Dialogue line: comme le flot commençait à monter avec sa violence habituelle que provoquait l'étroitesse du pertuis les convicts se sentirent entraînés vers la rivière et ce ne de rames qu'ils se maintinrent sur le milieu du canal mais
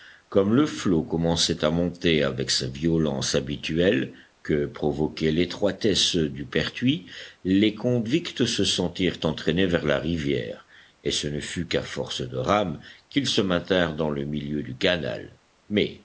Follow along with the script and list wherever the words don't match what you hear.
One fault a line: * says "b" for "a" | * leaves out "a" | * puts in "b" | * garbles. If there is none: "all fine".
* puts in "fut qu'à force"
* says "dans" for "sur"